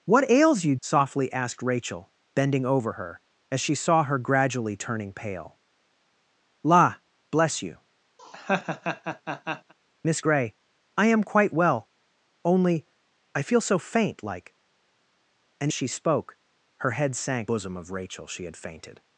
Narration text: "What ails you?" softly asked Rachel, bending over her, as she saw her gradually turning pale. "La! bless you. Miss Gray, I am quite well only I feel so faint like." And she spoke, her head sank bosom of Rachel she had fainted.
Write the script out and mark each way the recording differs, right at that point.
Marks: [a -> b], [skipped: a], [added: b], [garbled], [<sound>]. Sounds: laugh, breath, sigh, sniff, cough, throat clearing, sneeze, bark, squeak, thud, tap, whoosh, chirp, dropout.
"What ails you?" softly asked Rachel, bending over her, as she saw her gradually turning pale. "La! bless you. [laugh] Miss Gray, I am quite well only I feel so faint like." And she spoke, her head sank bosom of Rachel she had fainted.